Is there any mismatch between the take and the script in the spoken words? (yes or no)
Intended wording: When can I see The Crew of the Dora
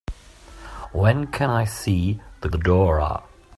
yes